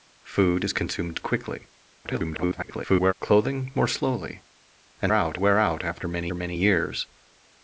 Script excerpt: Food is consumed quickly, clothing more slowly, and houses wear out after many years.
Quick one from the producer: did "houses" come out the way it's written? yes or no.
no